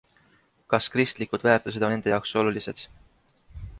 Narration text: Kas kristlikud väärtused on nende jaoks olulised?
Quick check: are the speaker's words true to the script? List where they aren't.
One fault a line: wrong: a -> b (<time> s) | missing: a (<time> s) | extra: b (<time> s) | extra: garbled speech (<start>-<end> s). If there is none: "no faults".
missing: on (1.9 s)